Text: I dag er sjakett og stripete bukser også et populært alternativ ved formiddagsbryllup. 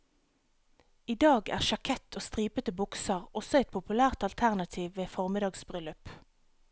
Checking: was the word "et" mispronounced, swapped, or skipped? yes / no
no